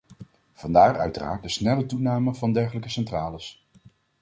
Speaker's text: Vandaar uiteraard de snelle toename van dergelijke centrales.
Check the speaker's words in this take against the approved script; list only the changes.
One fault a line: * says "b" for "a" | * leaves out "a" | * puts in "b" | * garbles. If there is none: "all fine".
all fine